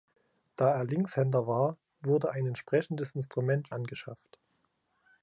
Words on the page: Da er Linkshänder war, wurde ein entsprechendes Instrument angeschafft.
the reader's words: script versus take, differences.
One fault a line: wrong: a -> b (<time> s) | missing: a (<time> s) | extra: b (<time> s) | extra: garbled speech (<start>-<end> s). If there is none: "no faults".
no faults